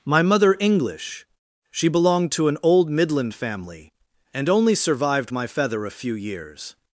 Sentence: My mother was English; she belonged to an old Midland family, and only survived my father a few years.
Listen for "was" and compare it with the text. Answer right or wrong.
wrong